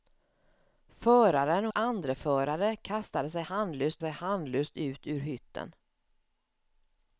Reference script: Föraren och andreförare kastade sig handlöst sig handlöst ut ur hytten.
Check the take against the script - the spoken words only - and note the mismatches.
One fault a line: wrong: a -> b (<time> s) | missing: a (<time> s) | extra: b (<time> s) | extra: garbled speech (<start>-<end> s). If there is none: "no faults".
no faults